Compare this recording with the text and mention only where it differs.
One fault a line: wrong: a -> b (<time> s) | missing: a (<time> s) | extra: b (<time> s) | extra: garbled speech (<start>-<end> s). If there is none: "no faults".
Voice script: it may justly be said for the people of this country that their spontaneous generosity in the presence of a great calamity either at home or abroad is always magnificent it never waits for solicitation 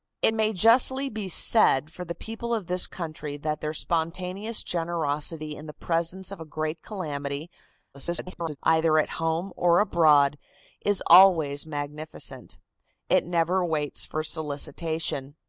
extra: garbled speech (7.9-8.6 s)